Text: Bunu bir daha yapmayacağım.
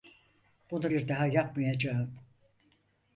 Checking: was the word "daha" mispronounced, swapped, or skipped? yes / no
no